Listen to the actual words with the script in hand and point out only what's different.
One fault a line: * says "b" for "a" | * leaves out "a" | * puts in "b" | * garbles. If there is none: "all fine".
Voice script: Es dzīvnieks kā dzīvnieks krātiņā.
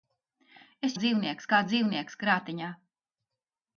all fine